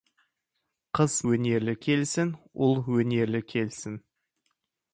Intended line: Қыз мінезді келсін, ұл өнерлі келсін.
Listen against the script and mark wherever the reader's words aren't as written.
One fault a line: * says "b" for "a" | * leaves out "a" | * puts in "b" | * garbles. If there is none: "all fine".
* says "өнерлі" for "мінезді"